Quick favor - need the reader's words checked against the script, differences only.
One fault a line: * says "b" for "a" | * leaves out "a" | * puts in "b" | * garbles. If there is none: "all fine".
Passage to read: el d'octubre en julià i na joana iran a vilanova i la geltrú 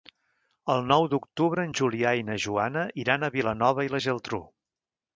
* puts in "nou"